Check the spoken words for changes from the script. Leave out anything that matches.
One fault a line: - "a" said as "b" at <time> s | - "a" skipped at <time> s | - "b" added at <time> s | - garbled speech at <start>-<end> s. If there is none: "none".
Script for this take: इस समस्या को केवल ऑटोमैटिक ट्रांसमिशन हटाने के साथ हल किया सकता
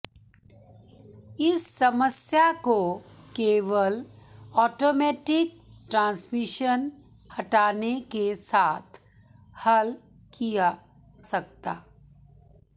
none